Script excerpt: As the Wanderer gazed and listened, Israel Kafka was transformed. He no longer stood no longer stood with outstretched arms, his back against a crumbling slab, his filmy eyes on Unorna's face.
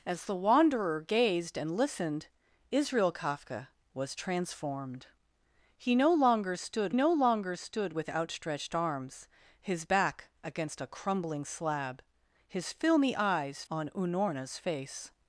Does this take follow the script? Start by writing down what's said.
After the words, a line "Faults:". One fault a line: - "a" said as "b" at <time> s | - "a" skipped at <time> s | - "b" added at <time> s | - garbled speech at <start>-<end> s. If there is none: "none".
As the Wanderer gazed and listened, Israel Kafka was transformed. He no longer stood no longer stood with outstretched arms, his back against a crumbling slab, his filmy eyes on Unorna's face.
Faults:
none